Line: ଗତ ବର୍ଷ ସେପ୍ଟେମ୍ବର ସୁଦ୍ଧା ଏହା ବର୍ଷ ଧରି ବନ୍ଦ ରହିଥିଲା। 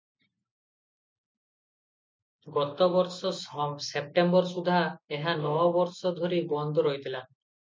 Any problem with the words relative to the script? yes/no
yes